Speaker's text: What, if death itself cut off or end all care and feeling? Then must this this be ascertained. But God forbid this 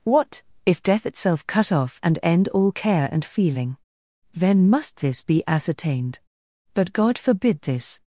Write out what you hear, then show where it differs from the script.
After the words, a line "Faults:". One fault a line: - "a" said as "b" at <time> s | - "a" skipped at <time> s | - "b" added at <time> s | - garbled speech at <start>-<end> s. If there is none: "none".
What, if death itself cut off and end all care and feeling? Then must this be ascertained. But God forbid this
Faults:
- "or" said as "and" at 2.0 s
- "this" skipped at 5.2 s